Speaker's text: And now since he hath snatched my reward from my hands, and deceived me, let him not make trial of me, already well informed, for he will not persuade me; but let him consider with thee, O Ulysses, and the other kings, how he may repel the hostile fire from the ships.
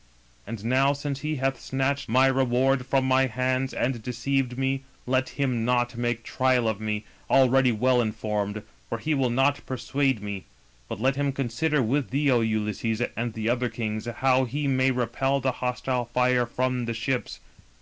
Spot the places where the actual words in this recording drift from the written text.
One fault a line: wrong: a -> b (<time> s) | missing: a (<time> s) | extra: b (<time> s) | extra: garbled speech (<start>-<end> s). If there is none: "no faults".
no faults